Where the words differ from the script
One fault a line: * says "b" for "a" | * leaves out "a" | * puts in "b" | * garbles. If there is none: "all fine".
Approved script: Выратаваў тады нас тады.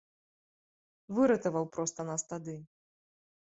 * says "проста" for "тады"